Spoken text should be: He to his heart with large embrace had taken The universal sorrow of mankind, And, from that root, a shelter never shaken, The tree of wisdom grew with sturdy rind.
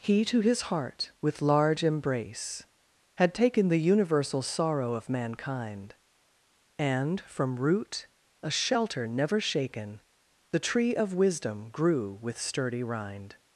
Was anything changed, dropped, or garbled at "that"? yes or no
yes